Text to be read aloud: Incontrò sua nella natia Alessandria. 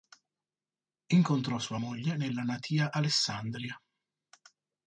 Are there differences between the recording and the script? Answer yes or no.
yes